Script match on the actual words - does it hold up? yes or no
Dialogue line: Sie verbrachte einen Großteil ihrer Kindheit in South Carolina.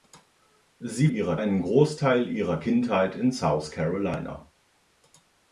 no